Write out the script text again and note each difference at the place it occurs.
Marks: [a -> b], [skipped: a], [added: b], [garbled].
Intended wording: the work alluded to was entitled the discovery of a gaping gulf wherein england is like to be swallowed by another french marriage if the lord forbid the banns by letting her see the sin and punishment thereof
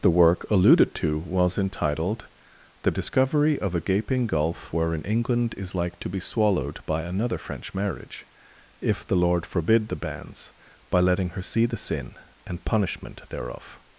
the work alluded to was entitled the discovery of a gaping gulf wherein england is like to be swallowed by another french marriage if the lord forbid the banns by letting her see the sin and punishment thereof